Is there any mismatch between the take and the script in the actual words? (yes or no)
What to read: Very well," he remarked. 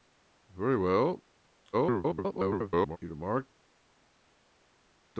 yes